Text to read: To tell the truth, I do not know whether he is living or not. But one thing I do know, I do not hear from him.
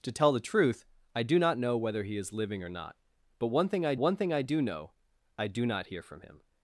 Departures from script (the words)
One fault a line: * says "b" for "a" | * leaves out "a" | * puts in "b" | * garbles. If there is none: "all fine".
* puts in "one thing I"